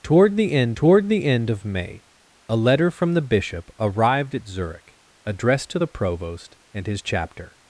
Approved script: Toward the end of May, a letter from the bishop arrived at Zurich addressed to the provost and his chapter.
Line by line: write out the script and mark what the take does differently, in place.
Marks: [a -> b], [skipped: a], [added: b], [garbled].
Toward the end [added: toward the end] of May, a letter from the bishop arrived at Zurich addressed to the provost and his chapter.